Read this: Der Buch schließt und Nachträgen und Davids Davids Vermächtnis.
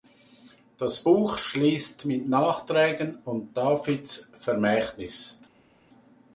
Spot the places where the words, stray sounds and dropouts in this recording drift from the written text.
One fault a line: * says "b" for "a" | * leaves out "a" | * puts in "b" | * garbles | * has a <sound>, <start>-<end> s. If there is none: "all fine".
* says "Das" for "Der"
* says "mit" for "und"
* leaves out "Davids"